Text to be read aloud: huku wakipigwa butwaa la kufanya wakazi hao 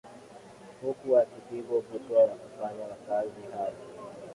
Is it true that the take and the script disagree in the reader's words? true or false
false